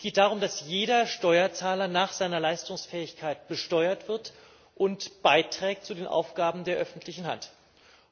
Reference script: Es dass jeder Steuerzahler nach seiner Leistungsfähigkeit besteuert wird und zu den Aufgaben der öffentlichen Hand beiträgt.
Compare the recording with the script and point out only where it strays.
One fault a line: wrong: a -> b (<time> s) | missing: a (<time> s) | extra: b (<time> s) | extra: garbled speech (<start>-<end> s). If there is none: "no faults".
extra: geht darum (0.0 s)